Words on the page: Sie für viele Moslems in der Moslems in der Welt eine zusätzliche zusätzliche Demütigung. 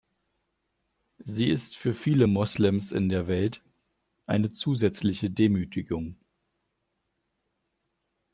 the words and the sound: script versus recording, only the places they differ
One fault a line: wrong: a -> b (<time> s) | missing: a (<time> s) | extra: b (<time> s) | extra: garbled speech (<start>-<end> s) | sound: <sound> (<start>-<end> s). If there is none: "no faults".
extra: ist (1.5 s)
missing: Moslems in der (3.3 s)
missing: zusätzliche (5.3 s)